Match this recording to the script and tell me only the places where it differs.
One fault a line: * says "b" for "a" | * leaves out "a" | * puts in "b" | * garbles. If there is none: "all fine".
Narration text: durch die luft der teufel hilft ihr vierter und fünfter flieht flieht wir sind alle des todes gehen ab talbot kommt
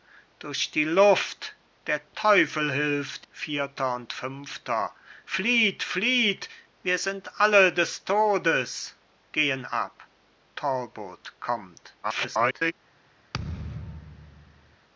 * leaves out "ihr"
* garbles